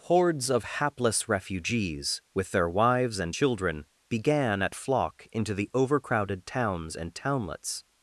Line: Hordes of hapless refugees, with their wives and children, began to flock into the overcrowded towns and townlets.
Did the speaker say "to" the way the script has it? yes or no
no